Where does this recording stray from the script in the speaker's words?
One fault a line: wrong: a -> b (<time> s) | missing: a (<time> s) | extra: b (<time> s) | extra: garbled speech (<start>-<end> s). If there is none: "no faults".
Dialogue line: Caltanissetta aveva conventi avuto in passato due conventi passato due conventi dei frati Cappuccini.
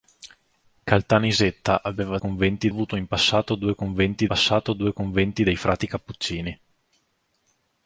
no faults